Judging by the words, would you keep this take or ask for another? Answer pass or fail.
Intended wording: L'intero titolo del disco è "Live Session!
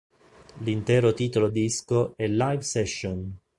fail